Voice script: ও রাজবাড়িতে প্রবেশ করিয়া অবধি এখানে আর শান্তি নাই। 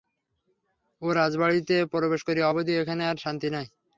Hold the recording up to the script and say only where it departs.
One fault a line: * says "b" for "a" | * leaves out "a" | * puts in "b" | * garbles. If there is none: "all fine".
all fine